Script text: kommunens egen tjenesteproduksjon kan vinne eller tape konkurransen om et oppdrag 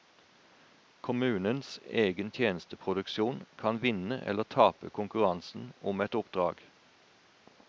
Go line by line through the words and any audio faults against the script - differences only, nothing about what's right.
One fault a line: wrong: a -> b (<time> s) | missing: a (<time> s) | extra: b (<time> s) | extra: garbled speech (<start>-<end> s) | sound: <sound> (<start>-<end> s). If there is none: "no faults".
no faults